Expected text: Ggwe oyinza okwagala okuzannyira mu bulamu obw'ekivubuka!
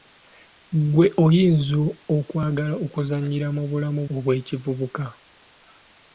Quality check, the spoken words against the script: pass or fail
pass